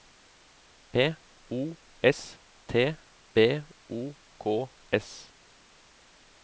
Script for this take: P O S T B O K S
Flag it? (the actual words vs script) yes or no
no